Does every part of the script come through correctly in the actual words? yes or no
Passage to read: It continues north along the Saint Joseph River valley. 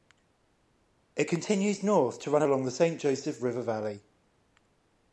no